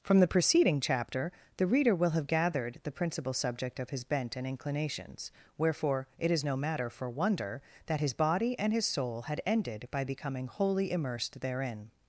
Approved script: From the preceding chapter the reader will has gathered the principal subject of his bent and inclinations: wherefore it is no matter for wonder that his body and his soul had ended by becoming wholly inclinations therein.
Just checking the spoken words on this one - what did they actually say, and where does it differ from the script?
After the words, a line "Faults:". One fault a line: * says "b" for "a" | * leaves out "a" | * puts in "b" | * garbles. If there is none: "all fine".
From the preceding chapter the reader will have gathered the principal subject of his bent and inclinations: wherefore it is no matter for wonder that his body and his soul had ended by becoming wholly immersed therein.
Faults:
* says "have" for "has"
* says "immersed" for "inclinations"